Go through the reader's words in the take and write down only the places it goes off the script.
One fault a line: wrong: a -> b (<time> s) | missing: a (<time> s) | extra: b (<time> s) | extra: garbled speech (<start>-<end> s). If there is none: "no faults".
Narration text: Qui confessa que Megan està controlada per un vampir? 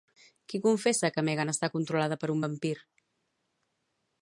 no faults